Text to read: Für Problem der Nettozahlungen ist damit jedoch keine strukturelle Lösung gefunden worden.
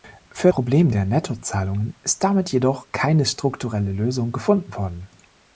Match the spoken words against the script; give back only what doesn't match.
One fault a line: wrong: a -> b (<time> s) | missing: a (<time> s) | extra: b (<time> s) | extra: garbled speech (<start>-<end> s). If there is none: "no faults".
no faults